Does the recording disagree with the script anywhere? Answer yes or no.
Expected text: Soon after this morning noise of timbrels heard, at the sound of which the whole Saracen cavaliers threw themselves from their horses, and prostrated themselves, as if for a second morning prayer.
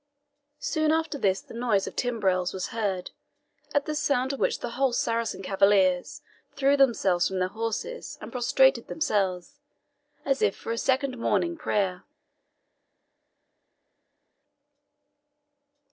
yes